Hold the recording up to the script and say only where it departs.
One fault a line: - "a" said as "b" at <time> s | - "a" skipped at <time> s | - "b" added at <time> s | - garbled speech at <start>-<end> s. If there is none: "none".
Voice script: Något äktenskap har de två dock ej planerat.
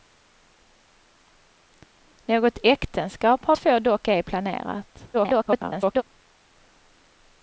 - "de" skipped at 3.5 s
- garbled speech at 5.1-6.0 s